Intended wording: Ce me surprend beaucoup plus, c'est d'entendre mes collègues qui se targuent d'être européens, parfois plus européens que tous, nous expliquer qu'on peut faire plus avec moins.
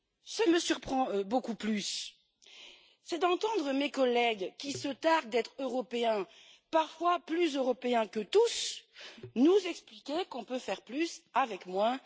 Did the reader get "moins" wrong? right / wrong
right